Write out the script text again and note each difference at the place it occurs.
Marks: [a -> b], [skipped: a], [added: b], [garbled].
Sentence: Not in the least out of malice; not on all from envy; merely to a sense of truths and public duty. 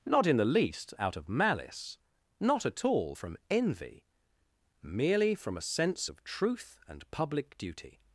Not in the least out of malice; not [on -> at] all from envy; merely [to -> from] a sense of [truths -> truth] and public duty.